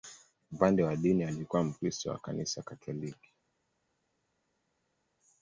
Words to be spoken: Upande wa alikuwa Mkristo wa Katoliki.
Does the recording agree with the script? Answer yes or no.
no